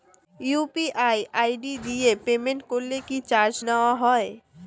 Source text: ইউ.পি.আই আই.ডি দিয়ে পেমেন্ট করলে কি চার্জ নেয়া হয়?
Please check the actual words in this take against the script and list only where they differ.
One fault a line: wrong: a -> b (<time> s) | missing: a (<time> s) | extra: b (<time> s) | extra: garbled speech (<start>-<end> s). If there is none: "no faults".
no faults